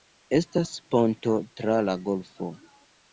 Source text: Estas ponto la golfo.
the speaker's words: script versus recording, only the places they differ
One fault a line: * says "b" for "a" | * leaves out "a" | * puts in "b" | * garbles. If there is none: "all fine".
* puts in "tra"